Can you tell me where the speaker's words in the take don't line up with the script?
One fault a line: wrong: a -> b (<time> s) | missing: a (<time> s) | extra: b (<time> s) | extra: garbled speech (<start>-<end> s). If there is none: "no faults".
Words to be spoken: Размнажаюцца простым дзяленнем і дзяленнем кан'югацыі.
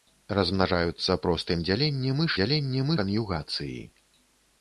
no faults